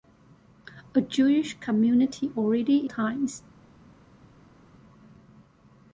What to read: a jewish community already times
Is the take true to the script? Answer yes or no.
yes